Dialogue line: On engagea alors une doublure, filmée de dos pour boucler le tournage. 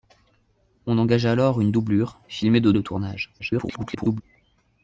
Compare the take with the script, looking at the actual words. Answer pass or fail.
fail